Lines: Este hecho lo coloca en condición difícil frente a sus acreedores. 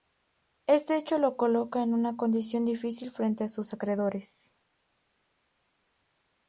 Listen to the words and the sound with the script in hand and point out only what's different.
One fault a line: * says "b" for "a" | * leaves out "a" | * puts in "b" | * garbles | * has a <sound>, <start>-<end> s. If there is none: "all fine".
* puts in "una"